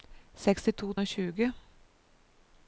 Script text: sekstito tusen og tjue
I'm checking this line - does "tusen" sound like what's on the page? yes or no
no